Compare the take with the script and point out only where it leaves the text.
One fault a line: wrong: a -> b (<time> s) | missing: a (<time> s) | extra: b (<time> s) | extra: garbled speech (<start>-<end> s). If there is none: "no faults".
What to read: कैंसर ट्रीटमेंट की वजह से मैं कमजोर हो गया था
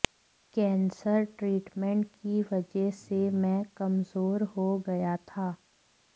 no faults